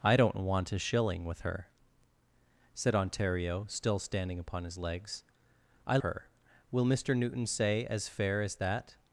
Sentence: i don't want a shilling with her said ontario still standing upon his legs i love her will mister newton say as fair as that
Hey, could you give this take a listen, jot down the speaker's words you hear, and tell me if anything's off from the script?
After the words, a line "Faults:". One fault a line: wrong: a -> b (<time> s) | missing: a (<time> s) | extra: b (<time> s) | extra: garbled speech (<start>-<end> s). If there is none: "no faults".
i don't want a shilling with her said ontario still standing upon his legs i her will mister newton say as fair as that
Faults:
missing: love (6.0 s)